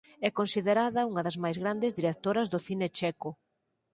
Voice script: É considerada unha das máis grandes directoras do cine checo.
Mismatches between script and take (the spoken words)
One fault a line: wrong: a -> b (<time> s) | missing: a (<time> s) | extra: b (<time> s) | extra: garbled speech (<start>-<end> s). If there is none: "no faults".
no faults